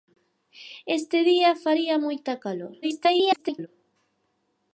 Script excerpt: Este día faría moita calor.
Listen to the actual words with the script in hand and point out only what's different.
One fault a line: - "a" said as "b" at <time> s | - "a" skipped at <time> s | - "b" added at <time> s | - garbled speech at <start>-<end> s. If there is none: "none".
- garbled speech at 2.8-3.7 s